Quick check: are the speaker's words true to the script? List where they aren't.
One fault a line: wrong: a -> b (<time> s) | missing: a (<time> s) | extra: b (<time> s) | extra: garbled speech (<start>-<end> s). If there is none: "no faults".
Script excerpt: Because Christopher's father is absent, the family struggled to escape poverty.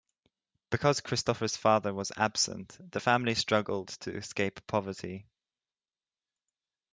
wrong: is -> was (1.9 s)